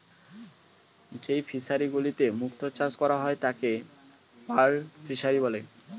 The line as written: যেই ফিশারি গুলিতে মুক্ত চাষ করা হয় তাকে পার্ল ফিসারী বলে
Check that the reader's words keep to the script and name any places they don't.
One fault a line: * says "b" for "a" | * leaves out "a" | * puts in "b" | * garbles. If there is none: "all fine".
all fine